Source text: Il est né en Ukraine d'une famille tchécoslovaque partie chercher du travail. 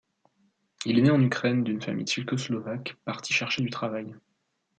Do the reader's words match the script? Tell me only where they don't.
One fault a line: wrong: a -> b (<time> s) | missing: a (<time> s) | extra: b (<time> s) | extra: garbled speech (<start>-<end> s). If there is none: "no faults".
no faults